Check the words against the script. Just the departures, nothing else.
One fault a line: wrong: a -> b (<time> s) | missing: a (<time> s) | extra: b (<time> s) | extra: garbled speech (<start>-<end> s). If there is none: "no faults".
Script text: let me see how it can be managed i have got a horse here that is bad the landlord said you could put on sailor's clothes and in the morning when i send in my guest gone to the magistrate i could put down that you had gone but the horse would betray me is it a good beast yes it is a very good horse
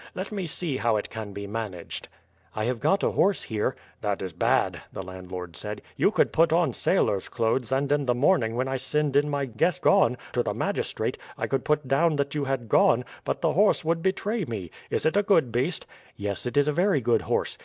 no faults